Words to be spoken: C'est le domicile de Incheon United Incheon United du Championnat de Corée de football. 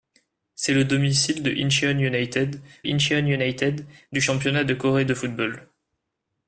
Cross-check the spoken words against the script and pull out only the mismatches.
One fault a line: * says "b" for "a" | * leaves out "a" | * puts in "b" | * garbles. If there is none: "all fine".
all fine